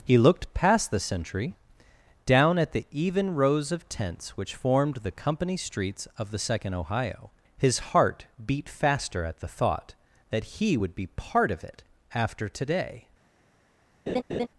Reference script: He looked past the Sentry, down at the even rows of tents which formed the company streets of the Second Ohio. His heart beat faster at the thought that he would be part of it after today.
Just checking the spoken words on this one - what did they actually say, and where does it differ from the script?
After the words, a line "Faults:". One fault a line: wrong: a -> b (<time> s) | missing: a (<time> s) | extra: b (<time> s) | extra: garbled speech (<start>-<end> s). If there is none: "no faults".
He looked past the Sentry, down at the even rows of tents which formed the company streets of the Second Ohio. His heart beat faster at the thought that he would be part of it after today.
Faults:
no faults